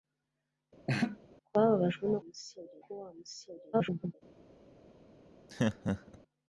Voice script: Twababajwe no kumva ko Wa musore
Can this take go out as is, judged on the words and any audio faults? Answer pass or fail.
fail